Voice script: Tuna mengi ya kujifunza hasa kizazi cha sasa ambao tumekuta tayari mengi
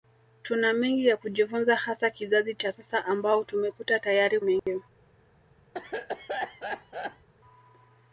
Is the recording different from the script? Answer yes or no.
no